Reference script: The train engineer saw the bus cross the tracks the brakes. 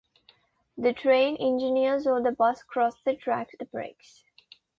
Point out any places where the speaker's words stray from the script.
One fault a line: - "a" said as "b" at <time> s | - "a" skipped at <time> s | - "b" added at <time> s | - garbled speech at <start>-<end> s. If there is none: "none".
none